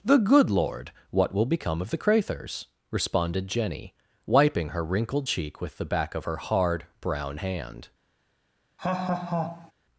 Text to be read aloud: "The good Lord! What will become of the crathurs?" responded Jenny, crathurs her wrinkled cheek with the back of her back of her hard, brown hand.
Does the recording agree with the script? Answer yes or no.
no